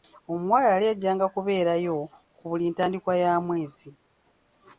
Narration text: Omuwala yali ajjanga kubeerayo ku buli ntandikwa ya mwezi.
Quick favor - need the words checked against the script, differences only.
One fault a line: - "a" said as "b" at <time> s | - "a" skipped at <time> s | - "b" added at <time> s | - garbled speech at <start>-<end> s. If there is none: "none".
none